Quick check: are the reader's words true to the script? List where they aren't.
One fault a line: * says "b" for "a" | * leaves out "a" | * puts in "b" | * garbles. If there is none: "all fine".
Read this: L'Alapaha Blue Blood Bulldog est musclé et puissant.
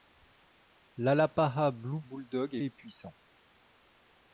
* leaves out "Blood"
* leaves out "musclé"